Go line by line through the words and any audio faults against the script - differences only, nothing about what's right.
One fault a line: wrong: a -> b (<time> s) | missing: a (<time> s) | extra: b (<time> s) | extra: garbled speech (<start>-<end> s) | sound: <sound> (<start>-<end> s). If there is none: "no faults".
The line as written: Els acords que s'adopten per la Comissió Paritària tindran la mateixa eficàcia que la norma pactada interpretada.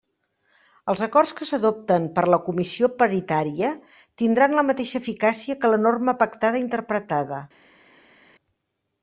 no faults